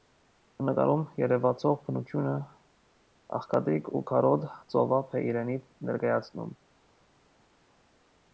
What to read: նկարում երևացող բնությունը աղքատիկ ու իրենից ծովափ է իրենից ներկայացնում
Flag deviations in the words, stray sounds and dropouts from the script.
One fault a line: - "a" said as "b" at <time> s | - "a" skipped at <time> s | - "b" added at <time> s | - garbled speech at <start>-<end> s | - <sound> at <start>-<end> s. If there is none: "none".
- "իրենից" said as "քարոտ" at 4.1 s